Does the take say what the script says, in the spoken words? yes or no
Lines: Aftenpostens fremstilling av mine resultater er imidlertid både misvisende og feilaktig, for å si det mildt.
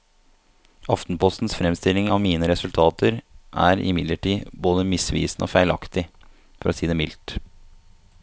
yes